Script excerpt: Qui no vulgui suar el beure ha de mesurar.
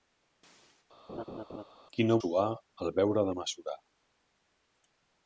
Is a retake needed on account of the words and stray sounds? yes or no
yes